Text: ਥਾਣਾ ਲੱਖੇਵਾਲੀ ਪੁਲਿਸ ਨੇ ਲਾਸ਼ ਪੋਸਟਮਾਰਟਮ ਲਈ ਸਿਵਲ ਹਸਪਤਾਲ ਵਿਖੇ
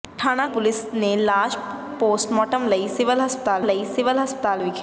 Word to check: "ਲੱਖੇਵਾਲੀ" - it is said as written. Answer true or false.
false